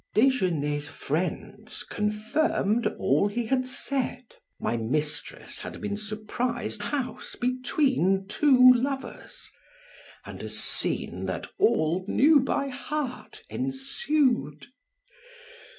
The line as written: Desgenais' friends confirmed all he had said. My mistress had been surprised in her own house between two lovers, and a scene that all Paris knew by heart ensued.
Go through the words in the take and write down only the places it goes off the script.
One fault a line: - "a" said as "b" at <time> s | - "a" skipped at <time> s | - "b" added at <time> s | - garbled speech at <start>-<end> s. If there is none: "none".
- "in her own" skipped at 6.8 s
- "Paris" skipped at 12.1 s